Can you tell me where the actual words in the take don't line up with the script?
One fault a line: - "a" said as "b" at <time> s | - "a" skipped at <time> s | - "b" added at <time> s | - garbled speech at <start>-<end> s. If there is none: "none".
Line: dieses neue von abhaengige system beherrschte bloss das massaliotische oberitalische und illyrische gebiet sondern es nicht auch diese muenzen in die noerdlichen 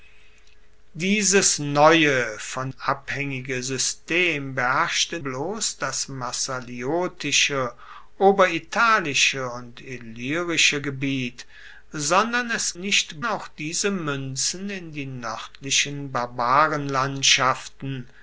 none